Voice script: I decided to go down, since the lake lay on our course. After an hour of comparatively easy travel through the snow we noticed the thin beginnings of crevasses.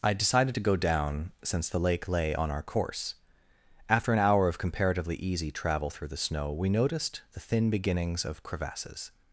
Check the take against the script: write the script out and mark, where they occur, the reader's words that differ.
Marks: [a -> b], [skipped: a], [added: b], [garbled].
I decided to go down, since the lake lay on our course. After an hour of comparatively easy travel through the snow we noticed the thin beginnings of crevasses.